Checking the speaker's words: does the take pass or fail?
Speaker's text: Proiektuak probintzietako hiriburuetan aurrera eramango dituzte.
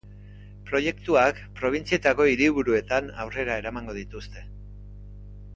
pass